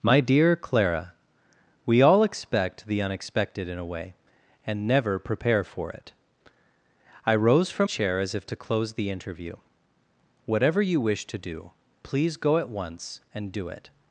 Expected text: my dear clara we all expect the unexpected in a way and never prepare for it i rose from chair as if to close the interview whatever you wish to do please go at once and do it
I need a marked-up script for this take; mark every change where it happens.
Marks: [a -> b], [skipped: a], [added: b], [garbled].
my dear clara we all expect the unexpected in a way and never prepare for it i rose from chair as if to close the interview whatever you wish to do please go at once and do it